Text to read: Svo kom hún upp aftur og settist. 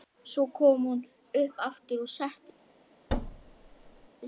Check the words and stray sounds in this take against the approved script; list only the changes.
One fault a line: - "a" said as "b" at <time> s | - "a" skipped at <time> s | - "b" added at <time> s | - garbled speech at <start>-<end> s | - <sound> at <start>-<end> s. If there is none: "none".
- thud at 3.1-4.1 s